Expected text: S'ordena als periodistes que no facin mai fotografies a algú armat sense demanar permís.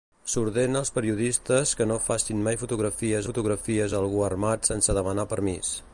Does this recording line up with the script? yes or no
no